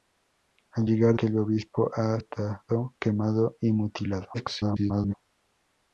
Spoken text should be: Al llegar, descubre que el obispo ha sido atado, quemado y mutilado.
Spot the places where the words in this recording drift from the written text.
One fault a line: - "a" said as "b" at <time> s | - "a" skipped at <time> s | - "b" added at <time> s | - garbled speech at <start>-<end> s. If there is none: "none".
- "descubre" skipped at 1.2 s
- "sido" skipped at 2.2 s
- garbled speech at 4.3-5.1 s